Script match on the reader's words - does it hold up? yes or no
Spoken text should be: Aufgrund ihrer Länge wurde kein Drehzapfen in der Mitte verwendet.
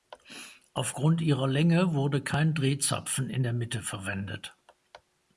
yes